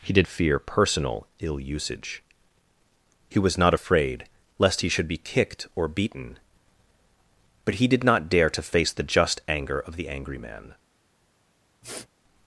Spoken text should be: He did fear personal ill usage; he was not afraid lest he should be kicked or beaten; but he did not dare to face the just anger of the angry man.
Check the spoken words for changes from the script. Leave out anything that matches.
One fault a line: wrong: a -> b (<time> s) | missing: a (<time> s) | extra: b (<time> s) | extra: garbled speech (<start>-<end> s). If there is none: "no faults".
no faults